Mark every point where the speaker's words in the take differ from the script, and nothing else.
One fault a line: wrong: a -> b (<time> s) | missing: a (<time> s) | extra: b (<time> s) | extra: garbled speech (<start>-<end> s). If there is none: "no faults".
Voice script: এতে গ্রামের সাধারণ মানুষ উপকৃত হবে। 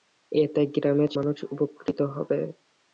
missing: সাধারণ (1.1 s)